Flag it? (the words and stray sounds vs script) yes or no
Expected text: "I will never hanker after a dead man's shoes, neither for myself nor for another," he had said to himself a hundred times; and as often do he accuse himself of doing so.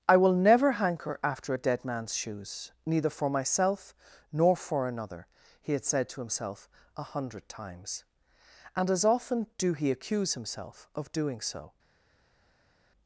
no